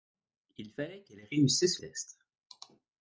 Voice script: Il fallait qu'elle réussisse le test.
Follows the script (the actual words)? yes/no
no